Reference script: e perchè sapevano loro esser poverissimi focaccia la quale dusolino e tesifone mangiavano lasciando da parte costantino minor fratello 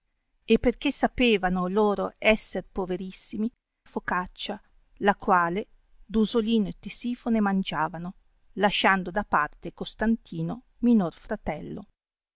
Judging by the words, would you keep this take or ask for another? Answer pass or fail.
pass